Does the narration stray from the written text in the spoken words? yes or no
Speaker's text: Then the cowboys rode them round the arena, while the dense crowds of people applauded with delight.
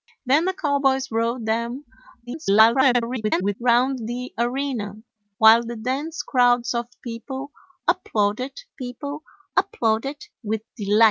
yes